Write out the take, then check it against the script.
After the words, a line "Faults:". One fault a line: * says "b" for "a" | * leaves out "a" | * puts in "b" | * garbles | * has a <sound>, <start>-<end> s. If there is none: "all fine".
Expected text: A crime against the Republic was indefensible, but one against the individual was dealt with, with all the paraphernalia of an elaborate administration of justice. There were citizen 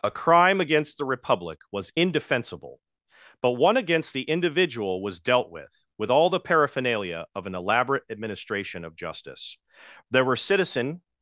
A crime against the Republic was indefensible, but one against the individual was dealt with, with all the paraphernalia of an elaborate administration of justice. There were citizen
Faults:
all fine